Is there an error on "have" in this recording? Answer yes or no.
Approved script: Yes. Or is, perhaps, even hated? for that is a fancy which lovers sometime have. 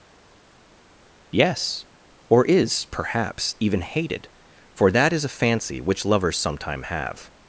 no